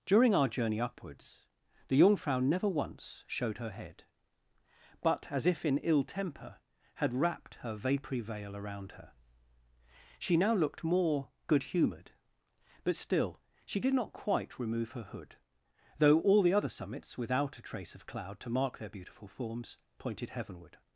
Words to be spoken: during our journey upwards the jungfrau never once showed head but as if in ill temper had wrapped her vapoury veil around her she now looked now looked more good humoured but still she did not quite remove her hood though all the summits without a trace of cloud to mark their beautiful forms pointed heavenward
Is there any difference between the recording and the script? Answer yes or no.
yes